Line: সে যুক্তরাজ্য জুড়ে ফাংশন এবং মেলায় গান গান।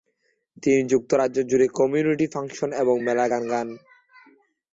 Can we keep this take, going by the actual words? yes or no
no